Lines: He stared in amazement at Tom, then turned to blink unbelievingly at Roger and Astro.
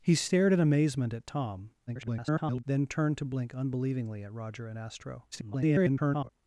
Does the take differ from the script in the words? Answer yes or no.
yes